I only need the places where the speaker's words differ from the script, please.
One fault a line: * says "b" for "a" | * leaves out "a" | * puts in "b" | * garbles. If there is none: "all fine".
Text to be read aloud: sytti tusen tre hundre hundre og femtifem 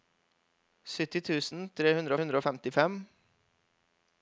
all fine